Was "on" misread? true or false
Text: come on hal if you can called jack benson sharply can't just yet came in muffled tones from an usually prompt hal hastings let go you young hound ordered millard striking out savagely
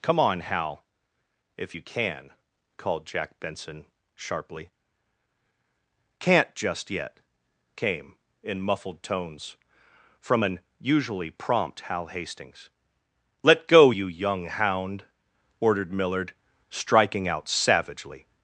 false